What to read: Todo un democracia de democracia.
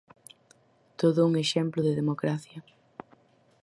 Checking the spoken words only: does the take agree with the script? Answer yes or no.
no